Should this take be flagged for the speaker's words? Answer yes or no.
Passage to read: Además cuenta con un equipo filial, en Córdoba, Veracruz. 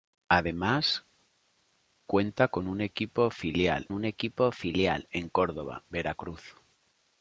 yes